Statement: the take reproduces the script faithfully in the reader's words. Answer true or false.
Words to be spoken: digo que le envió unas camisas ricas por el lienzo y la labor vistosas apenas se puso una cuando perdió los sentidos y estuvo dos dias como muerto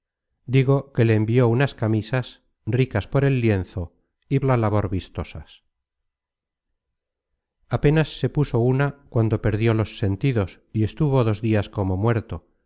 true